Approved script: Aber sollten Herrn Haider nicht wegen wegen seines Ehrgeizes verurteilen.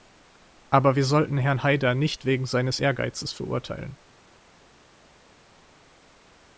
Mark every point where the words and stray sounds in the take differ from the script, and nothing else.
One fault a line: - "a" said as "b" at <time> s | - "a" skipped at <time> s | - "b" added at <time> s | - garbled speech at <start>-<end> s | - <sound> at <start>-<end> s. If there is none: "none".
- "wir" added at 0.9 s
- "wegen" skipped at 2.5 s